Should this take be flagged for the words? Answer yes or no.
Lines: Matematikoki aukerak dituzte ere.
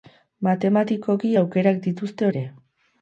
no